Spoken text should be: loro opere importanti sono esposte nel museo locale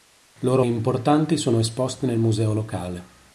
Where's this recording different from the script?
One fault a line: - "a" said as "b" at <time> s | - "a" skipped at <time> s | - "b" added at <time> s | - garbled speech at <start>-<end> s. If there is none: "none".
- "opere" skipped at 0.6 s